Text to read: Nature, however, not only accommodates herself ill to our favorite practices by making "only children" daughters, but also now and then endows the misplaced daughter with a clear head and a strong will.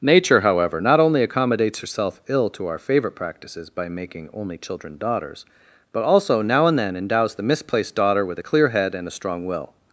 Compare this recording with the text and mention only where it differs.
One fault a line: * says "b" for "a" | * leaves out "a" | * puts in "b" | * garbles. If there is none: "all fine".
all fine